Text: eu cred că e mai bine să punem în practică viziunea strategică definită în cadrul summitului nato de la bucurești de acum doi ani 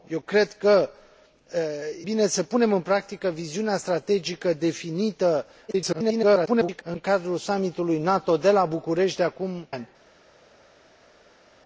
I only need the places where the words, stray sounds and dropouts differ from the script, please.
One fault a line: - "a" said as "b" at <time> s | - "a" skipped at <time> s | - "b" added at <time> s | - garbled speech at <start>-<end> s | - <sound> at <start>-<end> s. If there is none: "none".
- "e mai" skipped at 0.9 s
- garbled speech at 5.7-6.8 s
- "doi" skipped at 9.7 s